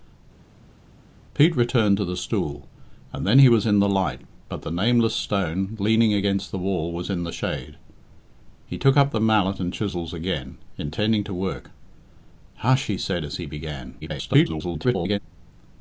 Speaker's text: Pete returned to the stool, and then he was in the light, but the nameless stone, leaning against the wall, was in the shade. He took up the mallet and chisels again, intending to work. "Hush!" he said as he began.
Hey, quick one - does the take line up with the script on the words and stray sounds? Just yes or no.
no